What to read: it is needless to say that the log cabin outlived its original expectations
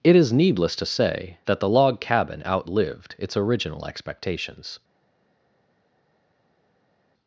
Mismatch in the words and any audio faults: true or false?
false